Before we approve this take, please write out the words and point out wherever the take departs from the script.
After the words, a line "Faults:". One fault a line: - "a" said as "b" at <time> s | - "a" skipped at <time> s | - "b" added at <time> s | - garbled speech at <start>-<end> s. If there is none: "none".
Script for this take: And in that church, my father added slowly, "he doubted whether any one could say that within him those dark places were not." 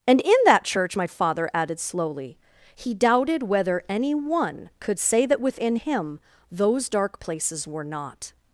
And in that church, my father added slowly, "he doubted whether any one could say that within him those dark places were not."
Faults:
none